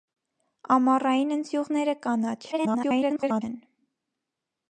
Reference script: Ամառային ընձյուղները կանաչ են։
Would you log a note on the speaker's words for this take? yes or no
yes